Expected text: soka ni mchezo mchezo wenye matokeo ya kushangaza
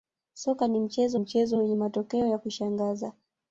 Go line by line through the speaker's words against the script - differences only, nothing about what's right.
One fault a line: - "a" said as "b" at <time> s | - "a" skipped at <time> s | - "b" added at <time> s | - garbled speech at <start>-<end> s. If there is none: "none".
none